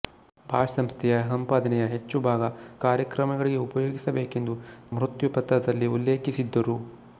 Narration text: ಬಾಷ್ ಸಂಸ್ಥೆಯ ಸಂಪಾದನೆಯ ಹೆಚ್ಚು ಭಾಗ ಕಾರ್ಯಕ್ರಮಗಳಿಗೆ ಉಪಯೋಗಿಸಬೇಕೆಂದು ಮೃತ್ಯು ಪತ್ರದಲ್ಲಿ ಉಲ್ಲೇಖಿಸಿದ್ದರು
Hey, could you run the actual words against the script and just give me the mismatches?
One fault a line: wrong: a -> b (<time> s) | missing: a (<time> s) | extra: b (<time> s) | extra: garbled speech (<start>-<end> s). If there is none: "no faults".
no faults